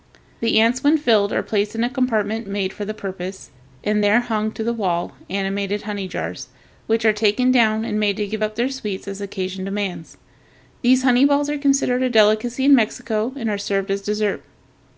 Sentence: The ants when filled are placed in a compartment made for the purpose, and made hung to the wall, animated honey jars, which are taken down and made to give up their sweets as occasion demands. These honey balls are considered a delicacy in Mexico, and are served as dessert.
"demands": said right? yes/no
yes